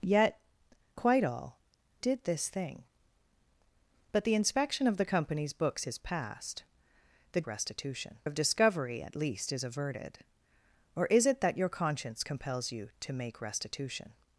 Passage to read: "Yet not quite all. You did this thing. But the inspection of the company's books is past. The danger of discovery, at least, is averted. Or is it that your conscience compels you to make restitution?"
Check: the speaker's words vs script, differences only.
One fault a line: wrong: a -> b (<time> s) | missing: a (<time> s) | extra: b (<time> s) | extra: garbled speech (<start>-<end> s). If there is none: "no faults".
missing: not (0.4 s)
missing: You (1.6 s)
wrong: danger -> restitution (7.4 s)